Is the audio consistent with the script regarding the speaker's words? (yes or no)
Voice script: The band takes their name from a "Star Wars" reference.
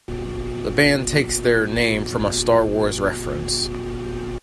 yes